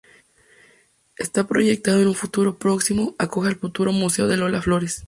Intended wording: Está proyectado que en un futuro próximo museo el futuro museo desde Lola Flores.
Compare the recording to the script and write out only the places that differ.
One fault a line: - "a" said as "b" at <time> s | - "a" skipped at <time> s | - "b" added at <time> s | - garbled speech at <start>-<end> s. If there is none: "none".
- "museo" said as "acoja" at 3.2 s
- "desde" said as "de" at 4.3 s